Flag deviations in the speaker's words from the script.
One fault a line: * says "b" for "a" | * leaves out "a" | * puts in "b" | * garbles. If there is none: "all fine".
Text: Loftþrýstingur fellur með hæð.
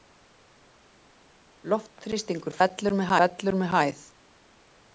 * puts in "fellur með"